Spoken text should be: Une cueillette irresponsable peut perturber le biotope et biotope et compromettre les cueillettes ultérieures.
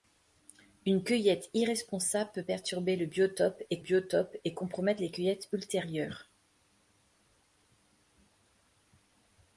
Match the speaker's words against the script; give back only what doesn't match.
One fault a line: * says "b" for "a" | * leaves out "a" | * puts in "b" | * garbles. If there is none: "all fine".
all fine